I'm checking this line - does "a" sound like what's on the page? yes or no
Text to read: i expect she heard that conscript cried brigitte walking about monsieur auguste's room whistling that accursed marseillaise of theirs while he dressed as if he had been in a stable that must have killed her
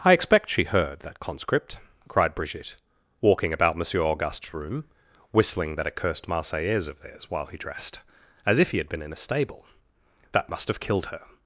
yes